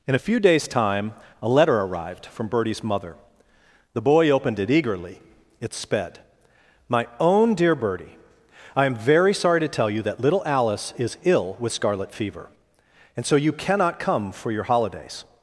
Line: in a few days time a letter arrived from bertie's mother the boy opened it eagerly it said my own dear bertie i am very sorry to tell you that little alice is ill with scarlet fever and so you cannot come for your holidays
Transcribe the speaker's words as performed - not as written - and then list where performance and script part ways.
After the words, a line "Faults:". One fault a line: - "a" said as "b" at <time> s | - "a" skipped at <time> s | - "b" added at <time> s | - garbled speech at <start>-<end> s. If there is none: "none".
in a few days time a letter arrived from bertie's mother the boy opened it eagerly it sped my own dear bertie i am very sorry to tell you that little alice is ill with scarlet fever and so you cannot come for your holidays
Faults:
- "said" said as "sped" at 5.7 s